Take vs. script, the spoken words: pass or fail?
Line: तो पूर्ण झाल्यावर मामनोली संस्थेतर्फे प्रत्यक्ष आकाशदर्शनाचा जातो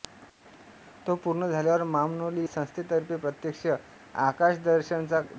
pass